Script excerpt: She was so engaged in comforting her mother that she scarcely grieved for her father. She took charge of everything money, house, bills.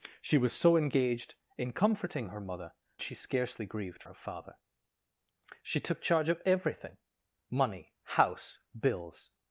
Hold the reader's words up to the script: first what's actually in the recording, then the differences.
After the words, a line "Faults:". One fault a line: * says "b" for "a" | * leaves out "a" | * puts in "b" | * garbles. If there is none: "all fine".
She was so engaged in comforting her mother she scarcely grieved her father. She took charge of everything money, house, bills.
Faults:
* leaves out "that"
* leaves out "for"